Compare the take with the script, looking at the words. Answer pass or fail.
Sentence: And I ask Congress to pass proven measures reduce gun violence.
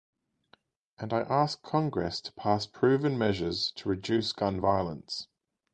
fail